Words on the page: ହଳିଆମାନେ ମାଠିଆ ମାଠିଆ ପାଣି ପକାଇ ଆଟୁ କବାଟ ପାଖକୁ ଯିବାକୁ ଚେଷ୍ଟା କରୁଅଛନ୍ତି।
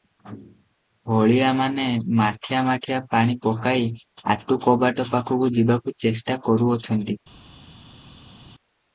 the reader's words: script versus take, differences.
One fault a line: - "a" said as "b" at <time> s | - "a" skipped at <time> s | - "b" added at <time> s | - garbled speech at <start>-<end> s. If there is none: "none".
none